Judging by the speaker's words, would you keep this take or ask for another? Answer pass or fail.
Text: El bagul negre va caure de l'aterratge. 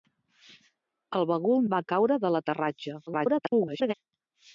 fail